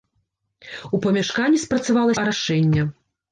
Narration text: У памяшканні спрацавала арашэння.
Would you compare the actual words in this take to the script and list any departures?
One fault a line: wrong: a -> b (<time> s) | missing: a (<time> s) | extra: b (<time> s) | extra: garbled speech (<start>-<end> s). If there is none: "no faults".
no faults